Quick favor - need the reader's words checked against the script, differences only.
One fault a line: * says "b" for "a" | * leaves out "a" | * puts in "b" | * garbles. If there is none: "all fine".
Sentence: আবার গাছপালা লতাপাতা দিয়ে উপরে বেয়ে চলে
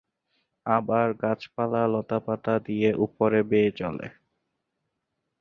all fine